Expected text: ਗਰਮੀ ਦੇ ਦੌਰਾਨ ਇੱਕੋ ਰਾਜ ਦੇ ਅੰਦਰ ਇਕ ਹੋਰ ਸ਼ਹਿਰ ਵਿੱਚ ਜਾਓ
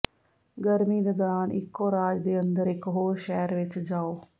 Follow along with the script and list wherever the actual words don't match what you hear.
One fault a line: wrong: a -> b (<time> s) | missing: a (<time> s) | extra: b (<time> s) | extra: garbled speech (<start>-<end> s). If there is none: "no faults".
no faults